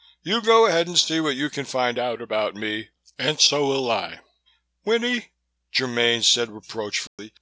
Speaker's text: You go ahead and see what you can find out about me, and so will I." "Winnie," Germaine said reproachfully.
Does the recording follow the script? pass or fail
pass